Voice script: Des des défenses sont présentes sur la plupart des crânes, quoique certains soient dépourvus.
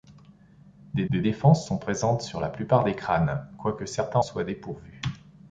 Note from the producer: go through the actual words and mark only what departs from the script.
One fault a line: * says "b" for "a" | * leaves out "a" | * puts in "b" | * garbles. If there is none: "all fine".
all fine